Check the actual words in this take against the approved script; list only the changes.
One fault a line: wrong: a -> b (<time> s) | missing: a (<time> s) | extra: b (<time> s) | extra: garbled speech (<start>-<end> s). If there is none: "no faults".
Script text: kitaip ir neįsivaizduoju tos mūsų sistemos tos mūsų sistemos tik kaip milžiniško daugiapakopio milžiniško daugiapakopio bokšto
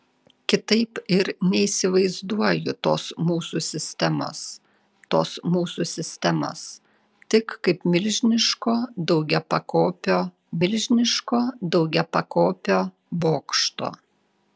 no faults